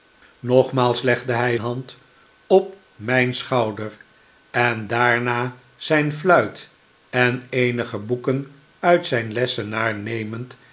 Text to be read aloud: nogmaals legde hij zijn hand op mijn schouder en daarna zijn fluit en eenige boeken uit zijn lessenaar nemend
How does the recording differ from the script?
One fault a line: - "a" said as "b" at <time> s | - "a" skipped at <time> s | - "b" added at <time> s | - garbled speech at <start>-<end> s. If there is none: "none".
- "zijn" skipped at 1.6 s